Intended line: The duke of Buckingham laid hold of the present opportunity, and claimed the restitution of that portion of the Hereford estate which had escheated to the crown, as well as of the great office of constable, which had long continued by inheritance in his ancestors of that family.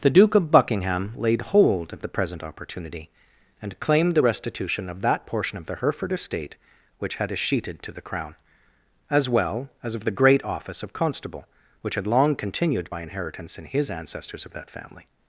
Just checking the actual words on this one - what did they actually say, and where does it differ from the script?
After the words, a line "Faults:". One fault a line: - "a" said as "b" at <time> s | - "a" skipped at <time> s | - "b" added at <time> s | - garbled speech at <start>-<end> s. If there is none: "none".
The duke of Buckingham laid hold of the present opportunity, and claimed the restitution of that portion of the Hereford estate which had escheated to the crown, as well as of the great office of constable, which had long continued by inheritance in his ancestors of that family.
Faults:
none